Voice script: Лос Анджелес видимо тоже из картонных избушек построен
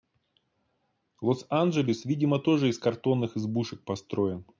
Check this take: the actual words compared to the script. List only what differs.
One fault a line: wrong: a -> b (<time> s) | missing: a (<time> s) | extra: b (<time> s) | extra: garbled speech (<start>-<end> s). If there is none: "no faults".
no faults